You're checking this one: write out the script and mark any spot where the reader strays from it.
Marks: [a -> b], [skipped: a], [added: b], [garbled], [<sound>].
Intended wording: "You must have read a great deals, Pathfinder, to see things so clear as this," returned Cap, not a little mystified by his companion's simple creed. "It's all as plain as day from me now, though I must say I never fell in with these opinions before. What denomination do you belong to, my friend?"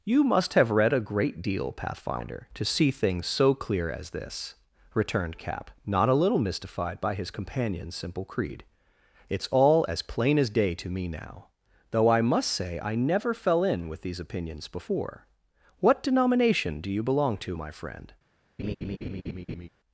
"You must have read a great [deals, -> deal] Pathfinder, to see things so clear as this," returned Cap, not a little mystified by his companion's simple creed. "It's all as plain as day [from -> to] me now, though I must say I never fell in with these opinions before. What denomination do you belong to, my friend?" [laugh]